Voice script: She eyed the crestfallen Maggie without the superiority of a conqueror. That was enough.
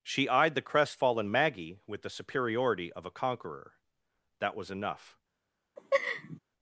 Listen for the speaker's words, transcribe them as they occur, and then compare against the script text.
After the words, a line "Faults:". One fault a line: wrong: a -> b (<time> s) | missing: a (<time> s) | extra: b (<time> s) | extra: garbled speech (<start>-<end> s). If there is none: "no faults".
She eyed the crestfallen Maggie with the superiority of a conqueror. That was enough.
Faults:
wrong: without -> with (1.9 s)